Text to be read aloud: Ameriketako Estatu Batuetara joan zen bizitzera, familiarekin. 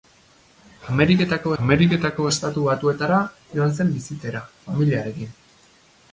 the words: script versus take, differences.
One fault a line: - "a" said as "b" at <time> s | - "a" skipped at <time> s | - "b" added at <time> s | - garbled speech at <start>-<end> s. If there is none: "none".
- "ameriketako" added at 1.6 s